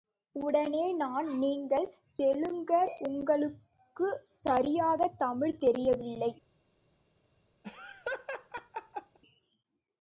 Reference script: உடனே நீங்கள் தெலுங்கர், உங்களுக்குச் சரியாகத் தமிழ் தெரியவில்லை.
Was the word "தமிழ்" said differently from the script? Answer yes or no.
no